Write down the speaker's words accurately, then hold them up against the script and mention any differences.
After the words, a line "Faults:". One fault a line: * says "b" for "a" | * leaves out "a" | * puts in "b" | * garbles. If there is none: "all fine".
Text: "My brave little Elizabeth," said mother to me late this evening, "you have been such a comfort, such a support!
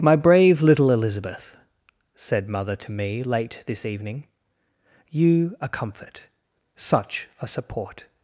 "My brave little Elizabeth," said mother to me late this evening, "you a comfort, such a support!
Faults:
* leaves out "have been such"